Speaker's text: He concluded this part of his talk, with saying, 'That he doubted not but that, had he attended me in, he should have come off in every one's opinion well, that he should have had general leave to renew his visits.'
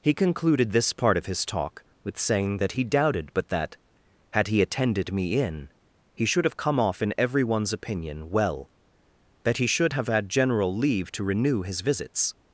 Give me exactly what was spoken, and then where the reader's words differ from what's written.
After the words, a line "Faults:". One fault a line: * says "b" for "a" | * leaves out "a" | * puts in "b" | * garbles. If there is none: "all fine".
He concluded this part of his talk, with saying, 'That he doubted but that, had he attended me in, he should have come off in every one's opinion well, that he should have had general leave to renew his visits.'
Faults:
* leaves out "not"